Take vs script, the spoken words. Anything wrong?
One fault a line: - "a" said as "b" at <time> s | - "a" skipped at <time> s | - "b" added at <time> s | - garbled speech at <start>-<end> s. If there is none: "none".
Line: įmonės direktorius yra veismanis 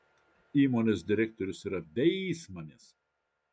none